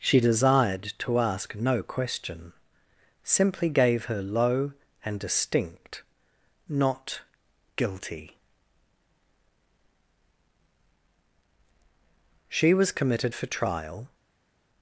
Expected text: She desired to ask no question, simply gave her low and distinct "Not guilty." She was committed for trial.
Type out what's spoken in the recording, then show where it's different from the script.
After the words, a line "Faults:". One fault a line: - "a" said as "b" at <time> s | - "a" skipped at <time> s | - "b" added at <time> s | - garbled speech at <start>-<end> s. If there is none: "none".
She desired to ask no question, simply gave her low and distinct "Not guilty." She was committed for trial.
Faults:
none